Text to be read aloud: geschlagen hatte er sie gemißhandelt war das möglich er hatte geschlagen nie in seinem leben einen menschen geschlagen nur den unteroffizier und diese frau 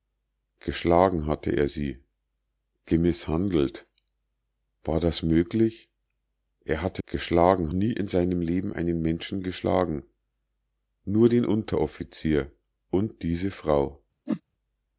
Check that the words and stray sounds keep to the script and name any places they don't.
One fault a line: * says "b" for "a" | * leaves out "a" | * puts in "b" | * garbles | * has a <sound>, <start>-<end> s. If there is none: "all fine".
* has a whoosh, 14.3-14.4 s